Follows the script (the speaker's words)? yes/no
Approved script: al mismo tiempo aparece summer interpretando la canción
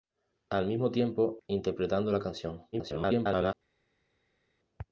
no